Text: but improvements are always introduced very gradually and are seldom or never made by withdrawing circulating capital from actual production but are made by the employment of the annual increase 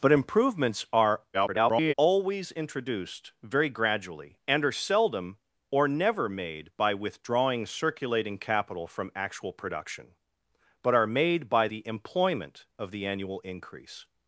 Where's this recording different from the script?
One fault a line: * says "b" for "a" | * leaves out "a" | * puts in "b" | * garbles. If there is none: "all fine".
* garbles